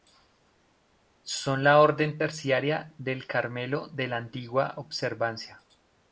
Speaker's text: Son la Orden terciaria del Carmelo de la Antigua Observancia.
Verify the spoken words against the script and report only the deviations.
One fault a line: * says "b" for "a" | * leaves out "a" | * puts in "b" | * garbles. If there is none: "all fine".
all fine